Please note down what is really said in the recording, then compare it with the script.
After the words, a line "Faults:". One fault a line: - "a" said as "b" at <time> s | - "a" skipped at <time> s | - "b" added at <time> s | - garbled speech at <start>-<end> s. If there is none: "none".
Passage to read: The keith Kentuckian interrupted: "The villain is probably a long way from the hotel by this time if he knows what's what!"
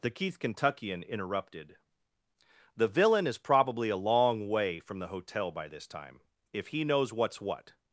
The keith Kentuckian interrupted: "The villain is probably a long way from the hotel by this time if he knows what's what!"
Faults:
none